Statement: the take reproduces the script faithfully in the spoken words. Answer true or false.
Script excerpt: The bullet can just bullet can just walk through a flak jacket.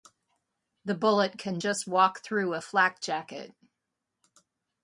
false